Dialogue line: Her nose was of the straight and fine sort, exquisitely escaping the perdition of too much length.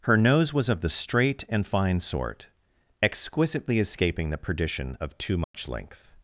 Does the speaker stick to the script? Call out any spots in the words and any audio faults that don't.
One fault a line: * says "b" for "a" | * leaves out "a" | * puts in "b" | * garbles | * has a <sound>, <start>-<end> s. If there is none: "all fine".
* has a dropout, 5.4-5.5 s